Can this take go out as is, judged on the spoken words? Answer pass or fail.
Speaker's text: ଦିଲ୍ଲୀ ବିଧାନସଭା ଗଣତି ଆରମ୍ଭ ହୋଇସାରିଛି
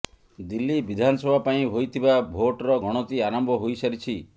fail